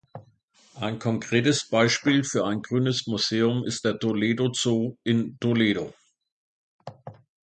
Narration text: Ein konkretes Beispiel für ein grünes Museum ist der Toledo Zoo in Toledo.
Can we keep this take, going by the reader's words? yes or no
yes